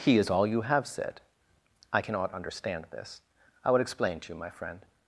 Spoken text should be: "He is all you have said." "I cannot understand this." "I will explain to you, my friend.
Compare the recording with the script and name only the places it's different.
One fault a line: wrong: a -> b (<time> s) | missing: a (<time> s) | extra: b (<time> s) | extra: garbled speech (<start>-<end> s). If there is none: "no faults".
no faults